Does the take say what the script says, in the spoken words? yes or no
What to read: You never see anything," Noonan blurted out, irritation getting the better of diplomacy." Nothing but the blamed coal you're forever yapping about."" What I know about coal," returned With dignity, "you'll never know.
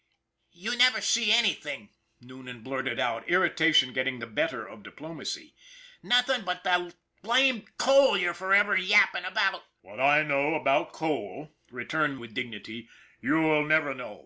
yes